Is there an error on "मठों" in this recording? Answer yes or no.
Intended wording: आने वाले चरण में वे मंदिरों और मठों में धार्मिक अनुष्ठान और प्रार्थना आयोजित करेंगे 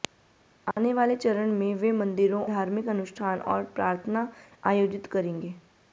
yes